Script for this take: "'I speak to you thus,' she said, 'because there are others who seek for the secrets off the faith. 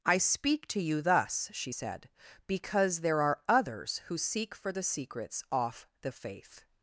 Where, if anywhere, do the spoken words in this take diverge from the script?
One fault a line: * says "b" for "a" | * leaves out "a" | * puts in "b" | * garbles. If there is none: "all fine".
all fine